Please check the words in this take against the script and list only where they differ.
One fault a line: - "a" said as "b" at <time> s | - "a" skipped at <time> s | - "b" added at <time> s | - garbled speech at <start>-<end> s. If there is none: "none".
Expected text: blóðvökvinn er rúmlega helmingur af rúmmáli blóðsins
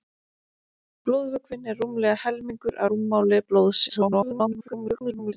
- "af" skipped at 2.8 s
- garbled speech at 3.9-5.3 s